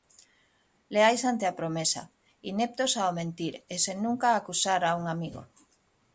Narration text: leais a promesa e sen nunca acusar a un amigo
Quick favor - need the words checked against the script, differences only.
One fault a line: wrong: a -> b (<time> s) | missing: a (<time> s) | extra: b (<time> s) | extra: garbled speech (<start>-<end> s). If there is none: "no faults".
extra: ante (1.3 s)
extra: ineptos ao mentir (2.5 s)